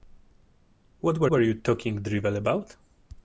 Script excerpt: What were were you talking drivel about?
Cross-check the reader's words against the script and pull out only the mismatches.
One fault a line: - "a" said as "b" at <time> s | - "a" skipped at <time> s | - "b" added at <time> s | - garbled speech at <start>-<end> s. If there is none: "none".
none